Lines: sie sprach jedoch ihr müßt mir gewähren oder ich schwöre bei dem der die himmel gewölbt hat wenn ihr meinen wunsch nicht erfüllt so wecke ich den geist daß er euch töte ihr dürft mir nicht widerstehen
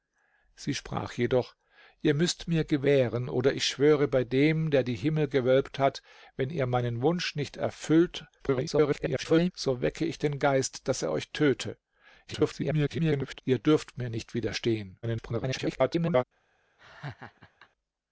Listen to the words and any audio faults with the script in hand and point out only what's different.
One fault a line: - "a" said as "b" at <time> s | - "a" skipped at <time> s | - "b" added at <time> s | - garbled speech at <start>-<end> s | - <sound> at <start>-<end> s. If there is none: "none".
- garbled speech at 8.4-9.5 s
- garbled speech at 12.3-13.4 s
- garbled speech at 15.0-16.2 s
- laugh at 16.8-17.7 s